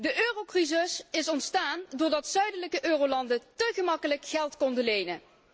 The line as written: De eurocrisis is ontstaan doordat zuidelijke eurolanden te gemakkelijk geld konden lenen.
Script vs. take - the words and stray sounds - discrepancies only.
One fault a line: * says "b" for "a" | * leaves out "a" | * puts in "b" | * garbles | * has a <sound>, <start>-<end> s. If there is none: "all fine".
all fine